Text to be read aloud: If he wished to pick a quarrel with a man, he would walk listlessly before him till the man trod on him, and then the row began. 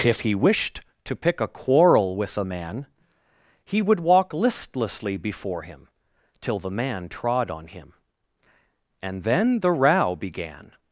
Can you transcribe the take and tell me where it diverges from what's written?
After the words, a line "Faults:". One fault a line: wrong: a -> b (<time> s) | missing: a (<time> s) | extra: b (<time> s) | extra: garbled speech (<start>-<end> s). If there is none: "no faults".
If he wished to pick a quarrel with a man, he would walk listlessly before him till the man trod on him, and then the row began.
Faults:
no faults